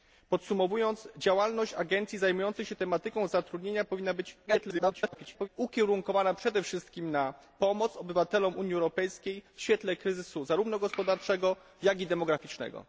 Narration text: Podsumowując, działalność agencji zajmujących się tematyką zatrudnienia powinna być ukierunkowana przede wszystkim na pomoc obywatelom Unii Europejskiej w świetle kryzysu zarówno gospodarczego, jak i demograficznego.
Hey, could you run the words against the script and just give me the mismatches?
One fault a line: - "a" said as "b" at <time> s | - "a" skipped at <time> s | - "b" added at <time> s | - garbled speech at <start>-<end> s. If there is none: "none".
- garbled speech at 4.5-5.5 s